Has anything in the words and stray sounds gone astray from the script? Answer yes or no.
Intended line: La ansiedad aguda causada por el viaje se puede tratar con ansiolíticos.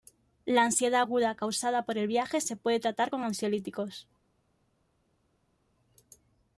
no